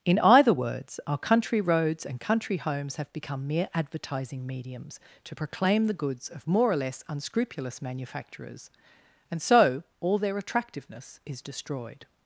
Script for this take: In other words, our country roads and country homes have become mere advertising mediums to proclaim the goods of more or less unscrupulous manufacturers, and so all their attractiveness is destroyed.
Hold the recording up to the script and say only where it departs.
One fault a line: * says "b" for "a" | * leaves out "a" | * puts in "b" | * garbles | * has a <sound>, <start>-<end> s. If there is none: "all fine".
* says "either" for "other"